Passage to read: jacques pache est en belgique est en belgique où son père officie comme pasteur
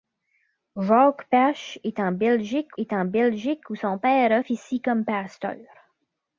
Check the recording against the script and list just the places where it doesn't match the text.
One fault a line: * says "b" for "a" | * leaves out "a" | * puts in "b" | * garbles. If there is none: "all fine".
all fine